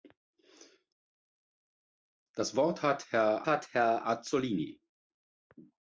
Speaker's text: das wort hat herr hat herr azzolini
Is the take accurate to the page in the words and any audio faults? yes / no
yes